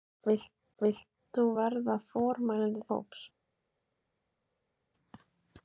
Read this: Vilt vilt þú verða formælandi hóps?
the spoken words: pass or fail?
pass